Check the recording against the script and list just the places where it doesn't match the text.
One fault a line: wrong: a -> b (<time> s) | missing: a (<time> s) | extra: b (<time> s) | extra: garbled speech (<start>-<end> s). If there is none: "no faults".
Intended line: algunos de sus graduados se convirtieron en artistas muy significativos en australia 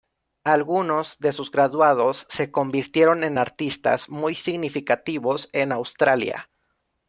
no faults